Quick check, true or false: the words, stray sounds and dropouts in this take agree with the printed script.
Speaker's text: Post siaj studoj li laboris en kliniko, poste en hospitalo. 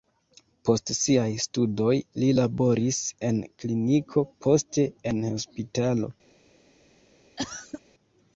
false